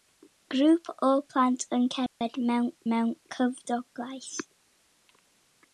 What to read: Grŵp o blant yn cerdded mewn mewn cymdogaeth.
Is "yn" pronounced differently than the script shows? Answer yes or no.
no